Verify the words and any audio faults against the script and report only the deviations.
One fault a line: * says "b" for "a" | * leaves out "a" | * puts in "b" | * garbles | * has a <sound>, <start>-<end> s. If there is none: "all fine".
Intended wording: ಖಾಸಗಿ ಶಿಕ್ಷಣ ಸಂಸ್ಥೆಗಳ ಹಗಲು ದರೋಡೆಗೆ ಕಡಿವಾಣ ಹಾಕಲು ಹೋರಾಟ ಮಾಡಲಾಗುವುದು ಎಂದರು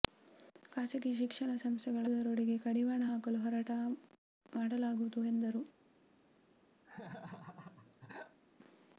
* leaves out "ಹಗಲು"
* has a laugh, 6.8-8.4 s